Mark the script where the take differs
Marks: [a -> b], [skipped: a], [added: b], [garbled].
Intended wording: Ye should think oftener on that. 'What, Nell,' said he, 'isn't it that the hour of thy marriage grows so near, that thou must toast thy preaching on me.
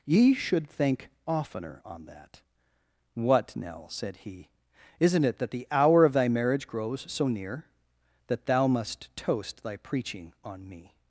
Ye should think oftener on that. 'What, Nell,' said he, 'isn't it that the hour of thy marriage grows so near, that thou must toast thy preaching on me.